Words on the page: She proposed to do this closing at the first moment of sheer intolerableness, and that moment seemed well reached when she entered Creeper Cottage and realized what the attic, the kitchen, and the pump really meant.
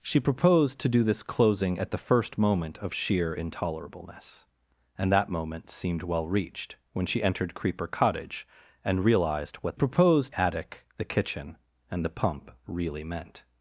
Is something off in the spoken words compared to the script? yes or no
yes